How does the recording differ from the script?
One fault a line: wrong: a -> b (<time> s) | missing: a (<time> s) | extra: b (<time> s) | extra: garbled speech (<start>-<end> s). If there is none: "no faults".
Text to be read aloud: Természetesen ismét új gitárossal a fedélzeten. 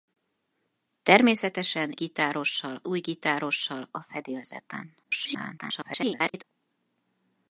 wrong: ismét -> gitárossal (1.9 s)
extra: garbled speech (5.0-6.4 s)